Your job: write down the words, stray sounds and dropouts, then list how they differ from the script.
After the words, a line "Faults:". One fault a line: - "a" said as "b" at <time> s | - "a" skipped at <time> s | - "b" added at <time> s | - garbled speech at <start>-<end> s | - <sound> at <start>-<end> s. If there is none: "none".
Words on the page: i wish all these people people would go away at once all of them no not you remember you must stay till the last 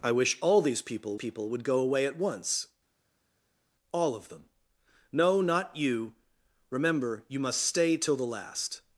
i wish all these people people would go away at once all of them no not you remember you must stay till the last
Faults:
none